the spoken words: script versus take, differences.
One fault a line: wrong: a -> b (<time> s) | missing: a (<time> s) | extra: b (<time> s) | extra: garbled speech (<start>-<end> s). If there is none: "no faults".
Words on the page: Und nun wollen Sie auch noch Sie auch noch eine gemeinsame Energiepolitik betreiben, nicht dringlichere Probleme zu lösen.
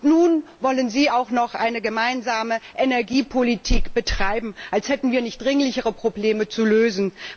missing: Sie auch noch (1.5 s)
extra: als hätten wir (4.7 s)